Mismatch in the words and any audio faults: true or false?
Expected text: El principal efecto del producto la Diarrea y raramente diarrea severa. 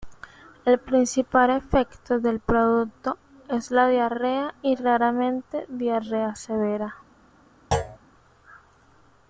true